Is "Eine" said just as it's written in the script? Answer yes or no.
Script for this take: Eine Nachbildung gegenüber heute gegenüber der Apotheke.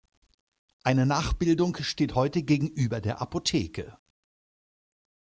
yes